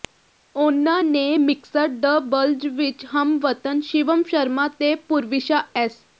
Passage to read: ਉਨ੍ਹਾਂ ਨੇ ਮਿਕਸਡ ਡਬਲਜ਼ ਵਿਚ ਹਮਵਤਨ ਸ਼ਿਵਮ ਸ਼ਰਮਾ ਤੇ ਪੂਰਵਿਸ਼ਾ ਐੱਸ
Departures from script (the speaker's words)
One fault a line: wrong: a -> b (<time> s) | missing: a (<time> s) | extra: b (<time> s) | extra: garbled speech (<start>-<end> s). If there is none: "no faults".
no faults